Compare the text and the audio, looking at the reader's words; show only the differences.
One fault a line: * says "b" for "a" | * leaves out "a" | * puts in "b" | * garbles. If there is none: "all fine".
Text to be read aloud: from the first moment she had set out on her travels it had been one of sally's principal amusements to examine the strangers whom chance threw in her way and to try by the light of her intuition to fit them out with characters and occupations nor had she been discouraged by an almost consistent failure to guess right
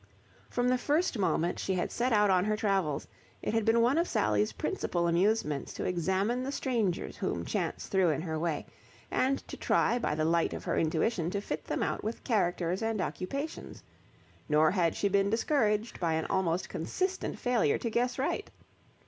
all fine